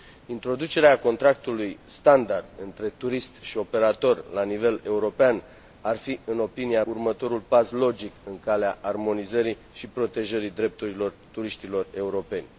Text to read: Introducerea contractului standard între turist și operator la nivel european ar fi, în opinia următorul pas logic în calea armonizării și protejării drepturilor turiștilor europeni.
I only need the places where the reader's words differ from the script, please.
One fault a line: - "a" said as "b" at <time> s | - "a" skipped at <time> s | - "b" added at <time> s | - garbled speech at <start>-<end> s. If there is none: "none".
none